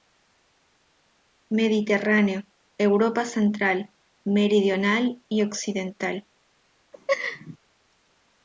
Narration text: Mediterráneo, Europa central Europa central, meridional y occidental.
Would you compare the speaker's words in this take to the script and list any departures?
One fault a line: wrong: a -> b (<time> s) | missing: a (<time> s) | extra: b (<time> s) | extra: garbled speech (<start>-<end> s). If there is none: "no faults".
missing: Europa central (3.9 s)